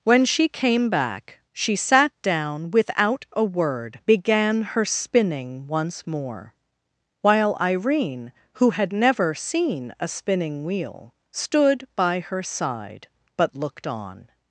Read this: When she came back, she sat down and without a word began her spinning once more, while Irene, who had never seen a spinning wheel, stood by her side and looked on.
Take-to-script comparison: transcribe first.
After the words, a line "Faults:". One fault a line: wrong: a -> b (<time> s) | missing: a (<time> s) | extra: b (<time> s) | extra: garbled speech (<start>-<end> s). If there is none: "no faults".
When she came back, she sat down without a word began her spinning once more, while Irene, who had never seen a spinning wheel, stood by her side but looked on.
Faults:
missing: and (2.7 s)
wrong: and -> but (13.4 s)